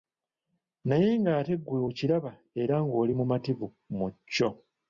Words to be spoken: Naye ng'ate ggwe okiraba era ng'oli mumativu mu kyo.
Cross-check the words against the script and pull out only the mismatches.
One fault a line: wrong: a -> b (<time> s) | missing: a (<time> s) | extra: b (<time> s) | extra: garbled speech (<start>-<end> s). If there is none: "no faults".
no faults